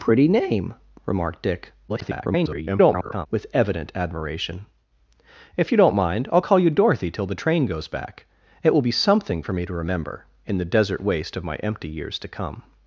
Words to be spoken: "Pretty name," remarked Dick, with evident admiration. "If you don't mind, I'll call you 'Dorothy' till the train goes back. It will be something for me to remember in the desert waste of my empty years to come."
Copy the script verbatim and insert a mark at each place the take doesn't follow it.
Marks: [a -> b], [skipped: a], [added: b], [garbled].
"Pretty name," remarked Dick, [garbled] with evident admiration. "If you don't mind, I'll call you 'Dorothy' till the train goes back. It will be something for me to remember in the desert waste of my empty years to come."